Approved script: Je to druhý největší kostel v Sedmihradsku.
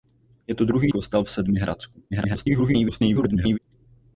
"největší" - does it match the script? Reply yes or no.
no